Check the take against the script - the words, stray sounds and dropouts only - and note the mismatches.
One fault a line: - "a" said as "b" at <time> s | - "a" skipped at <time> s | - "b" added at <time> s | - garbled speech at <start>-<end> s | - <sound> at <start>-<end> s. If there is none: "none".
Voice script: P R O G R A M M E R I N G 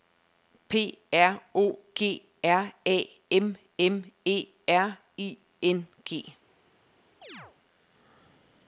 - chirp at 7.2-7.6 s